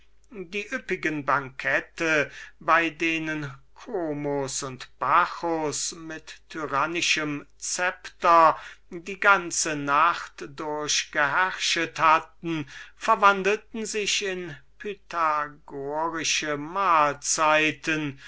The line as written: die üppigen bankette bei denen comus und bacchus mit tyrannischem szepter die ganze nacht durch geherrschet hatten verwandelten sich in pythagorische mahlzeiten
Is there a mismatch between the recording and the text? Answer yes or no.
no